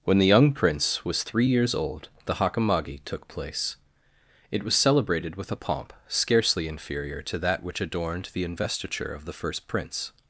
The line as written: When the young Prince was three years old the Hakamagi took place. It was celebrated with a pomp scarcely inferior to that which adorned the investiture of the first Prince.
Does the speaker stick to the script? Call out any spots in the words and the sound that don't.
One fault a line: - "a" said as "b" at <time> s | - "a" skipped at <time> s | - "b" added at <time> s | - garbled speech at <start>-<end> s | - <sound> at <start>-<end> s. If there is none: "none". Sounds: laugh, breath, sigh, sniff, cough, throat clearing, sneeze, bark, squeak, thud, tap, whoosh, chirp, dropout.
none